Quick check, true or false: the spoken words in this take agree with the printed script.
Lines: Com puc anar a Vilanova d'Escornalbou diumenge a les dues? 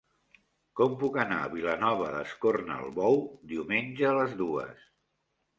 true